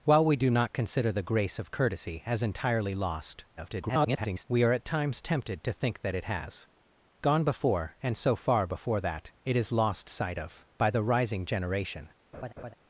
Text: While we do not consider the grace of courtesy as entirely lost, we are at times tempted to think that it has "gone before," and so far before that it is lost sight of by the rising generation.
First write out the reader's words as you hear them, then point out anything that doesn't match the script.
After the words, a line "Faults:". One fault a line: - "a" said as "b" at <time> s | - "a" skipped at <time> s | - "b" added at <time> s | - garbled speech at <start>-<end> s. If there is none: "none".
While we do not consider the grace of courtesy as entirely lost, [garbled] we are at times tempted to think that it has "gone before," and so far before that it is lost sight of by the rising generation.
Faults:
- garbled speech at 3.6-4.4 s